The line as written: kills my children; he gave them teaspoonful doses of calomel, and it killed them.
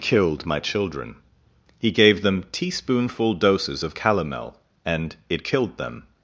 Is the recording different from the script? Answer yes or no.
yes